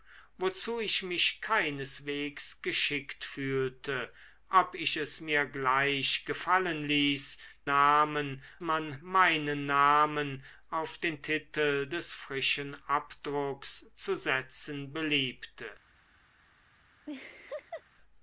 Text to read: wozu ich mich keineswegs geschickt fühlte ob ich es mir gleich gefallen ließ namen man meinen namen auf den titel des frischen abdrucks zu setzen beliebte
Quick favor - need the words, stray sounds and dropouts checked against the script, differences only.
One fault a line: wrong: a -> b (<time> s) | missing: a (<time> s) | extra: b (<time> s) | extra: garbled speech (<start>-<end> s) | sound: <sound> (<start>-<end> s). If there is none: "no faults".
sound: laugh (17.1-17.8 s)